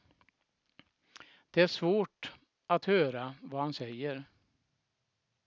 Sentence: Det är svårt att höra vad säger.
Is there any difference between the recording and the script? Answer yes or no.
yes